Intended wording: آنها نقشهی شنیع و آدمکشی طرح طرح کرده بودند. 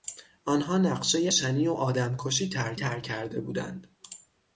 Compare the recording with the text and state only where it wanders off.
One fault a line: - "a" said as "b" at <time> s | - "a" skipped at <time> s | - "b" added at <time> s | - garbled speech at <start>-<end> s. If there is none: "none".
none